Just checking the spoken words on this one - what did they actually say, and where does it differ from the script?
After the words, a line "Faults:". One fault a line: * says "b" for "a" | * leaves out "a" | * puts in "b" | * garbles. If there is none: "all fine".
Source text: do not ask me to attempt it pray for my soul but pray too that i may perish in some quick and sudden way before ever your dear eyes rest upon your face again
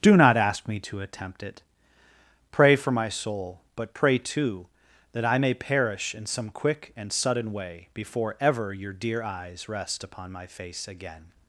do not ask me to attempt it pray for my soul but pray too that i may perish in some quick and sudden way before ever your dear eyes rest upon my face again
Faults:
* says "my" for "your"